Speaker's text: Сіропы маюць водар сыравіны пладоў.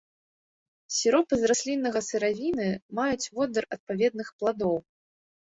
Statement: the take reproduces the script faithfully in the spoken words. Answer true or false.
false